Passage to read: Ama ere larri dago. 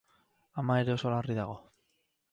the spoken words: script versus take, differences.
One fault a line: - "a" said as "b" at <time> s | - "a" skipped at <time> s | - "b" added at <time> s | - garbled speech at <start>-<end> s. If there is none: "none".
- "oso" added at 0.9 s